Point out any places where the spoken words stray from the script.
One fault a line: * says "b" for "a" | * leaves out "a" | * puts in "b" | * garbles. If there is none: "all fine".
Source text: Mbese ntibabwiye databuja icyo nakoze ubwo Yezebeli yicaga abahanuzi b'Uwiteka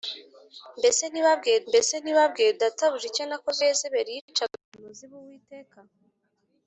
* puts in "mbese ntibabwiye"
* leaves out "ubwo"